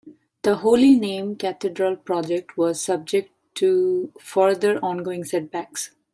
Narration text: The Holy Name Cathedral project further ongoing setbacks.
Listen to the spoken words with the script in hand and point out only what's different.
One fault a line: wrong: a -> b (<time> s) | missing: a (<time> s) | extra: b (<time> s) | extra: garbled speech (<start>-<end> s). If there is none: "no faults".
extra: was subject to (2.6 s)